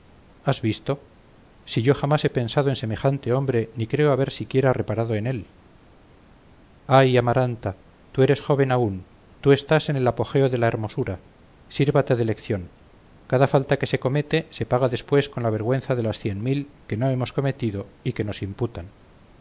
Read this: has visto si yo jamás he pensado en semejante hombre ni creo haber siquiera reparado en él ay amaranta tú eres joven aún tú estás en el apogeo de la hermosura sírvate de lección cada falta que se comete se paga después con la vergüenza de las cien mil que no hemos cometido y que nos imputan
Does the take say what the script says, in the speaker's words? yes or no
yes